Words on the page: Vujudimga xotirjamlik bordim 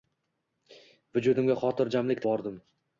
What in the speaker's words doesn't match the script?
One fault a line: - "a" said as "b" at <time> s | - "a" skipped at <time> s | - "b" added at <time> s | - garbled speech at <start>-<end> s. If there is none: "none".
none